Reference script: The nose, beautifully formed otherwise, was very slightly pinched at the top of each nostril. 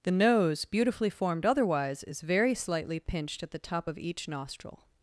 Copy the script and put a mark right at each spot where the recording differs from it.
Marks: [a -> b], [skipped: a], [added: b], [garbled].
The nose, beautifully formed otherwise, [was -> is] very slightly pinched at the top of each nostril.